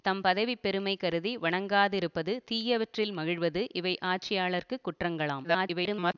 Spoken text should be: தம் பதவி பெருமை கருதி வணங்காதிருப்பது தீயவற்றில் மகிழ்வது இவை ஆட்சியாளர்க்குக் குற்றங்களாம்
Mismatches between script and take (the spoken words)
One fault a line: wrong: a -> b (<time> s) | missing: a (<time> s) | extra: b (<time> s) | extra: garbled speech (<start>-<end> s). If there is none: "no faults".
extra: garbled speech (5.4-6.1 s)